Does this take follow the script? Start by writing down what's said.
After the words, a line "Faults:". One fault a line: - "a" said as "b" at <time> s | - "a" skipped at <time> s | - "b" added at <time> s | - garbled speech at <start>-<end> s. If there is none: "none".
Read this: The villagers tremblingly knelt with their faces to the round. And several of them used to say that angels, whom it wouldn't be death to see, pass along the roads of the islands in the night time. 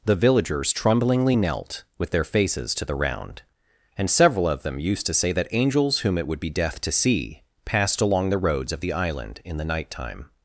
The villagers tremblingly knelt with their faces to the round. And several of them used to say that angels, whom it would be death to see, passed along the roads of the island in the night time.
Faults:
- "wouldn't" said as "would" at 6.3 s
- "pass" said as "passed" at 7.6 s
- "islands" said as "island" at 8.9 s